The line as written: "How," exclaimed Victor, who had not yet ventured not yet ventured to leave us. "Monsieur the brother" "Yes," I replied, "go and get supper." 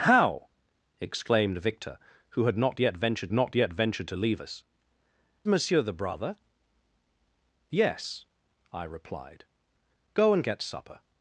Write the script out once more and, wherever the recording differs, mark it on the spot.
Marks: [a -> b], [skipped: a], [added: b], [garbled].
"How," exclaimed Victor, who had not yet ventured not yet ventured to leave us. "Monsieur the brother" "Yes," I replied, "go and get supper."